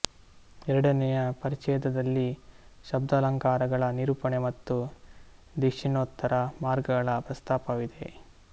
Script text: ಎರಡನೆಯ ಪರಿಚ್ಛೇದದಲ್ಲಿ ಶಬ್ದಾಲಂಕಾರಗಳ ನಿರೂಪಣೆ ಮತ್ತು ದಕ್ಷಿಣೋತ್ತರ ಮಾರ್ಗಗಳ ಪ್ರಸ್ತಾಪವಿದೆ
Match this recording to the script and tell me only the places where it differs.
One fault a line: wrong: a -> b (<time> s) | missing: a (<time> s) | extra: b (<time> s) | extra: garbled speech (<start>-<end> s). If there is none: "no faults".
no faults